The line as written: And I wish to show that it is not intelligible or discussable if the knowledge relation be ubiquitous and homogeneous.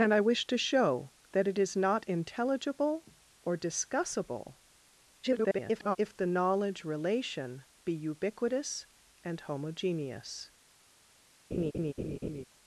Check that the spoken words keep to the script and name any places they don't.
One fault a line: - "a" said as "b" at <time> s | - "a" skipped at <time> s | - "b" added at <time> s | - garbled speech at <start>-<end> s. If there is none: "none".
- garbled speech at 5.2-6.0 s